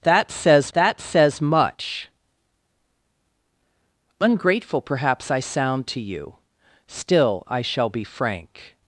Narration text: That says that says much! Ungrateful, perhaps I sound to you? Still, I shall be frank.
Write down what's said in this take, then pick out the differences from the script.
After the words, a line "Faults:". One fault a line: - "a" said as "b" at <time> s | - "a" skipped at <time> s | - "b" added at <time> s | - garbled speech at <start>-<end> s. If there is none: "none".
That says that says much! Ungrateful, perhaps I sound to you? Still, I shall be frank.
Faults:
none